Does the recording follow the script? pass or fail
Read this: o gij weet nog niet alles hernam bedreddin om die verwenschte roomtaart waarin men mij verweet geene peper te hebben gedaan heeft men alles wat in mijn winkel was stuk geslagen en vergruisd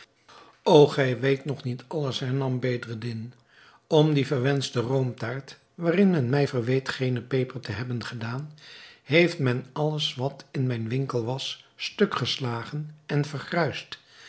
pass